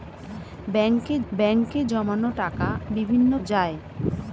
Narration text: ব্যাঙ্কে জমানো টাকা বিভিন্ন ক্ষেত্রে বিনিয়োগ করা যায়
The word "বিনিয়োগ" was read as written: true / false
false